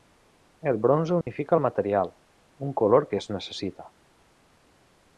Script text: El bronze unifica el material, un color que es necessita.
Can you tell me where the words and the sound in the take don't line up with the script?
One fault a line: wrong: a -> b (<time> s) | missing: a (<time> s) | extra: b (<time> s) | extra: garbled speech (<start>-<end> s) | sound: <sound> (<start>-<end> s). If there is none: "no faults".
sound: dropout (1.2-1.3 s)